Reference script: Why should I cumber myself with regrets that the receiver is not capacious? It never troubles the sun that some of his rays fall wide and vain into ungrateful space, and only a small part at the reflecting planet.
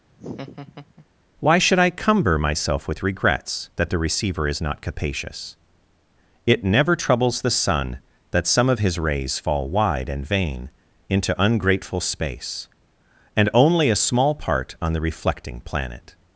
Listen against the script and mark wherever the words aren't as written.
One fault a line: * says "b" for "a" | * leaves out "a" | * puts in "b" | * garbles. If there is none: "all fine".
* says "on" for "at"